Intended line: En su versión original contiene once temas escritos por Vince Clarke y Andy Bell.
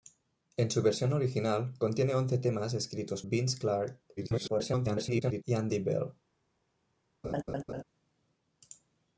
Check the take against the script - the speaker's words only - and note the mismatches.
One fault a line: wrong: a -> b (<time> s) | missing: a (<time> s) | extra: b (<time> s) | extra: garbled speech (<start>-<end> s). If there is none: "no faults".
missing: por (3.2 s)
extra: garbled speech (4.2-5.4 s)